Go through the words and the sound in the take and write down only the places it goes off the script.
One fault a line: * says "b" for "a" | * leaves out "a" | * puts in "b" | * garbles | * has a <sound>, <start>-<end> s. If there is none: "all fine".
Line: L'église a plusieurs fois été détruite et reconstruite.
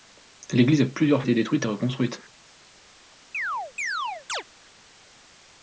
* leaves out "fois"
* has a chirp, 3.3-4.4 s